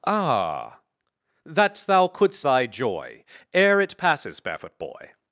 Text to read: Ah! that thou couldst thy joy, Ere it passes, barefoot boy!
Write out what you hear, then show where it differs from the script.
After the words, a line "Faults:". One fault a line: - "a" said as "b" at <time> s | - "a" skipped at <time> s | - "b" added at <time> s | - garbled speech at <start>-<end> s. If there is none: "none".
Ah! that thou couldst thy joy, Ere it passes, barefoot boy!
Faults:
none